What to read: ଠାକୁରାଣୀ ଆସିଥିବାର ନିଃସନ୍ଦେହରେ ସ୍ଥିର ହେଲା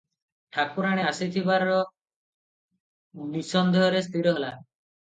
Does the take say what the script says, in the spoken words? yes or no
yes